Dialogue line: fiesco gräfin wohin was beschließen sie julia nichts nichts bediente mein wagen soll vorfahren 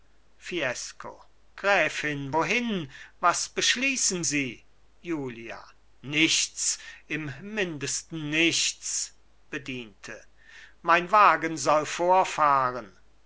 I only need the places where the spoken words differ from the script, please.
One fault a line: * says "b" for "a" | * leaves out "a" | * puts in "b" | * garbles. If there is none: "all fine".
* puts in "im mindesten"